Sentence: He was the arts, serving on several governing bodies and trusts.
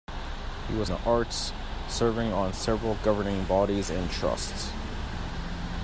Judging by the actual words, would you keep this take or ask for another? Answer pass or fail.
pass